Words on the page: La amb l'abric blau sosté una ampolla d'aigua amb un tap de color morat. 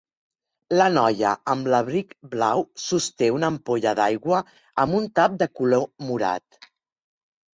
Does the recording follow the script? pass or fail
fail